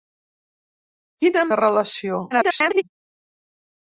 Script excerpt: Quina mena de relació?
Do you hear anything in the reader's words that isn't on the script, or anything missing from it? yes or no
yes